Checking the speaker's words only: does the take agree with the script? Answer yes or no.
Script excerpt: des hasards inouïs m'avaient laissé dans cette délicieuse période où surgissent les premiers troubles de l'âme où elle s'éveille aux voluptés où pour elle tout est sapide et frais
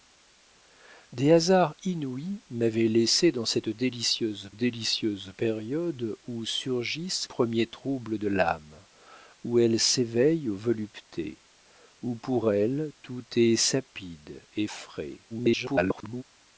no